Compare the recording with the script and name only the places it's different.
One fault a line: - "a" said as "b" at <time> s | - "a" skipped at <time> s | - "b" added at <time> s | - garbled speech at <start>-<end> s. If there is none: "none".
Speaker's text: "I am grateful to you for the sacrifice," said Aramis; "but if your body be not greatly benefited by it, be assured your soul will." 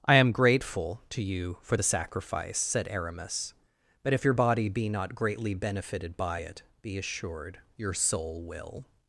none